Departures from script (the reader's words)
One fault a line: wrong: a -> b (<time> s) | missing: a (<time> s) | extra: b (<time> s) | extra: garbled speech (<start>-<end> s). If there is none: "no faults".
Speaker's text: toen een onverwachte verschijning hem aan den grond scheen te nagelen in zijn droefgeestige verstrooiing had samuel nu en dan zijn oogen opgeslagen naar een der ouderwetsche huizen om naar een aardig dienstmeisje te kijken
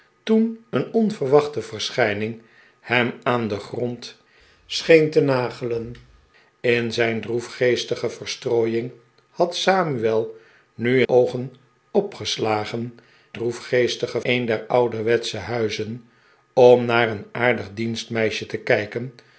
missing: en dan zijn (11.0 s)
wrong: naar -> droefgeestige (13.3 s)